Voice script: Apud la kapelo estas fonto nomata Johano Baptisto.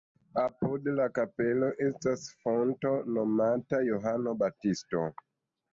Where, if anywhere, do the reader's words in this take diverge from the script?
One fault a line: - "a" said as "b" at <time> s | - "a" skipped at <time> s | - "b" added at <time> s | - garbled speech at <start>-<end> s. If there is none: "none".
none